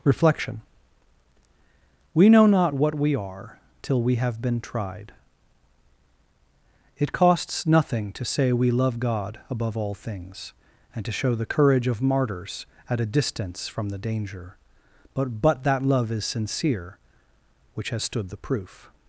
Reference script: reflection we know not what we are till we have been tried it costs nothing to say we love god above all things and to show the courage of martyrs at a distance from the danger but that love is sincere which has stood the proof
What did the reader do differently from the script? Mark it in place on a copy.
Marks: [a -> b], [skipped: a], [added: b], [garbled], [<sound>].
reflection we know not what we are till we have been tried it costs nothing to say we love god above all things and to show the courage of martyrs at a distance from the danger but [added: but] that love is sincere which has stood the proof